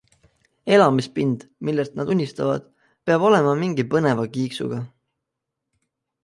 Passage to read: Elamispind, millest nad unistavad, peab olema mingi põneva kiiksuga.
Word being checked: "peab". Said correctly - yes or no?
yes